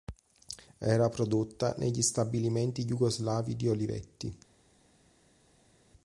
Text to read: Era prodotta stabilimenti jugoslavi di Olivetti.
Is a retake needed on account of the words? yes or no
yes